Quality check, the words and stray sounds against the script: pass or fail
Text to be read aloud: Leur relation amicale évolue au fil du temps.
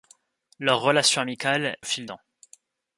fail